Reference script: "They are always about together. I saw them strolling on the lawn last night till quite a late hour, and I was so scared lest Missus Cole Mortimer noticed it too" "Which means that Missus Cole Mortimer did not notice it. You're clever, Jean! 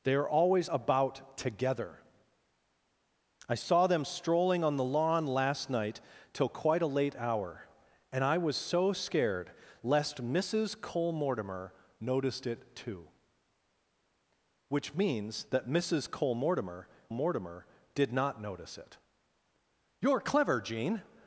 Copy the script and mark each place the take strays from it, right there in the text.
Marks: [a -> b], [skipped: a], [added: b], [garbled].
"They are always about together. I saw them strolling on the lawn last night till quite a late hour, and I was so scared lest Missus Cole Mortimer noticed it too" "Which means that Missus Cole Mortimer [added: Mortimer] did not notice it. You're clever, Jean!